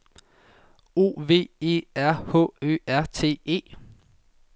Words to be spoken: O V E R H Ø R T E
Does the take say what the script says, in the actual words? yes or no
yes